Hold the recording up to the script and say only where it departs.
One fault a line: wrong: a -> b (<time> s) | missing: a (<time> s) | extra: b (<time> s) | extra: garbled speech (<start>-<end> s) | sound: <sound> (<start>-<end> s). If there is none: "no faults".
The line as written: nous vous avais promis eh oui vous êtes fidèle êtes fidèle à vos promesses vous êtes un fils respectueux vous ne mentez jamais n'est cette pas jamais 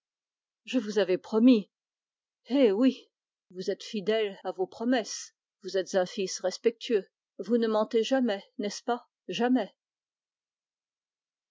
wrong: nous -> je (0.7 s)
missing: êtes fidèle (4.4 s)
wrong: cette -> ce (8.7 s)